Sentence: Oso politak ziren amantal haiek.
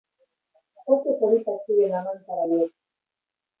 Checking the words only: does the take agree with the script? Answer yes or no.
yes